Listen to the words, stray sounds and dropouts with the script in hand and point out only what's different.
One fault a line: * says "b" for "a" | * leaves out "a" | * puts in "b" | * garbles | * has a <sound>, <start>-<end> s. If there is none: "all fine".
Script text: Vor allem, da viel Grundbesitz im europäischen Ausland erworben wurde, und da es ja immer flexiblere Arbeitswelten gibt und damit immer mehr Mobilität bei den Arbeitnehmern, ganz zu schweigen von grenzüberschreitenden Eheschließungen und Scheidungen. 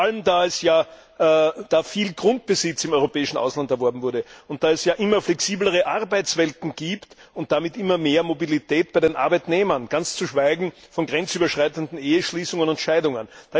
all fine